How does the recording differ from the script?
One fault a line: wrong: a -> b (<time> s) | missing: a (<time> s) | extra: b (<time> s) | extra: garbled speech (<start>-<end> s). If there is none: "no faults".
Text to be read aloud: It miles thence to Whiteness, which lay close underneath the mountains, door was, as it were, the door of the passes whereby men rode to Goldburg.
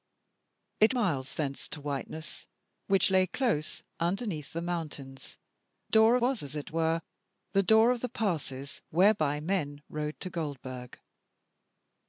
no faults